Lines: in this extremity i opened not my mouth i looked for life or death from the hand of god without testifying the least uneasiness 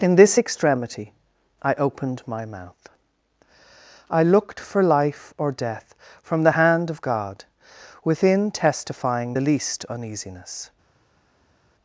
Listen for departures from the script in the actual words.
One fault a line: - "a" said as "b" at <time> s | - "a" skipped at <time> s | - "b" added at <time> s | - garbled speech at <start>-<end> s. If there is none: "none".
- "not" skipped at 2.2 s
- "without" said as "within" at 8.0 s